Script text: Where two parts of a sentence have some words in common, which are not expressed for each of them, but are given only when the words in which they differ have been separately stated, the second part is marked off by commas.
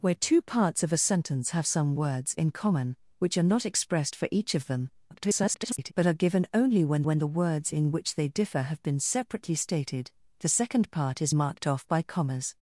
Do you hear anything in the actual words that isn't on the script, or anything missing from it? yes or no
yes